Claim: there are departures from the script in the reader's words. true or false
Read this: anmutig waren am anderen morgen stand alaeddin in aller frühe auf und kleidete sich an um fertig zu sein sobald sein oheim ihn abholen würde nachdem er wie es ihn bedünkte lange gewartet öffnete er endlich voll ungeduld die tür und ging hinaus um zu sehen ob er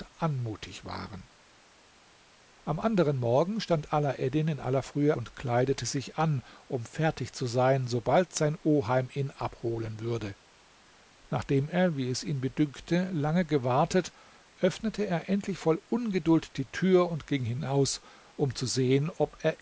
true